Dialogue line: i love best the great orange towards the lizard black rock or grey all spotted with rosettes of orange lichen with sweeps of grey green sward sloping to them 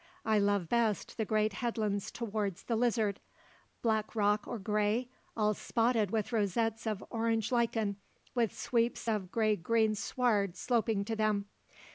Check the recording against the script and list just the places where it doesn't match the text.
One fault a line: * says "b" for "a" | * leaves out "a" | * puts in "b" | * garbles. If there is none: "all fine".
* says "headlands" for "orange"